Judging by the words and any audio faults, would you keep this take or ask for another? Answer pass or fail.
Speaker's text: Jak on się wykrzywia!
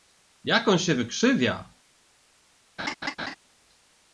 fail